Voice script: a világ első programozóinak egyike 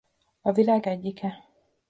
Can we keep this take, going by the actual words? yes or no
no